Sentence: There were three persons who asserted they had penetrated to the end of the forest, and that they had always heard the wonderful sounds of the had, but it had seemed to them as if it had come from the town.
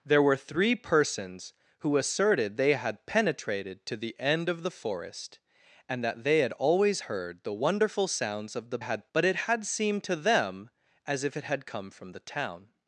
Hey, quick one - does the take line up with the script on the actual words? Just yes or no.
yes